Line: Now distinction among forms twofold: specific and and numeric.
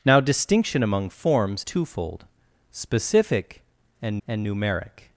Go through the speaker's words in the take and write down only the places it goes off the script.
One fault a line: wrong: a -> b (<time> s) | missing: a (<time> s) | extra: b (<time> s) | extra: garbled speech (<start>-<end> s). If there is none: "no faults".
no faults